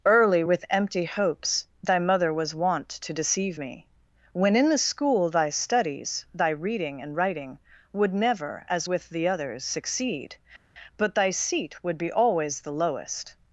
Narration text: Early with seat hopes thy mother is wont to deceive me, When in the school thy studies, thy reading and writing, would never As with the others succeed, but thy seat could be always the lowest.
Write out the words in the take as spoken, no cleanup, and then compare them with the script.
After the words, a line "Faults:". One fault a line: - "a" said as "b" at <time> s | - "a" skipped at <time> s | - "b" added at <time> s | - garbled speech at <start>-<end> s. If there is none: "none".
Early with empty hopes thy mother was wont to deceive me, When in the school thy studies, thy reading and writing, would never As with the others succeed, but thy seat would be always the lowest.
Faults:
- "seat" said as "empty" at 0.7 s
- "is" said as "was" at 2.3 s
- "could" said as "would" at 11.8 s